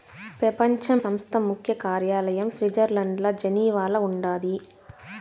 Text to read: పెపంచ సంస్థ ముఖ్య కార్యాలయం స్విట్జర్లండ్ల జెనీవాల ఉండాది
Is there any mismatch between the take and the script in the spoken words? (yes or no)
no